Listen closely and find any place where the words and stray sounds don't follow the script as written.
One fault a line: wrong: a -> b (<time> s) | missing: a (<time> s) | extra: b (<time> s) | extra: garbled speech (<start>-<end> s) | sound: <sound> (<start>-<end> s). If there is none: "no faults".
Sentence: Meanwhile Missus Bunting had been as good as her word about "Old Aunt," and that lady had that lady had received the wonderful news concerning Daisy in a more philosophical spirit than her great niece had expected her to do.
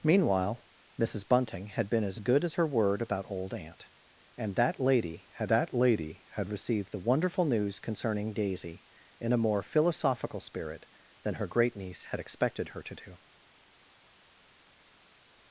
no faults